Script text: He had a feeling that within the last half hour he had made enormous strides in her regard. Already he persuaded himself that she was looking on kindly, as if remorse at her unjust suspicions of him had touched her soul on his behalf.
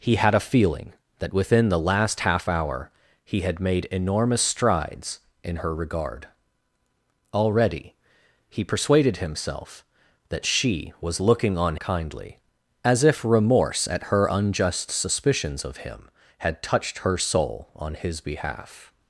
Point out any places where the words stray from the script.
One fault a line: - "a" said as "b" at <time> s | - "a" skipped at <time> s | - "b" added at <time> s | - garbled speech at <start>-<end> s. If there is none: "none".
none